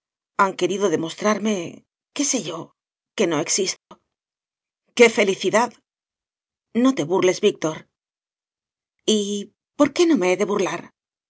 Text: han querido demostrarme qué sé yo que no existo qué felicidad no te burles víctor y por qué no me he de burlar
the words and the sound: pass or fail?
fail